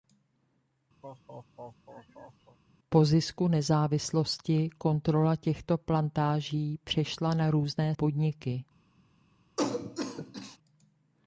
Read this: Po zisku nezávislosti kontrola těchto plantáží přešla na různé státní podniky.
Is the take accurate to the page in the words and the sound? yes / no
no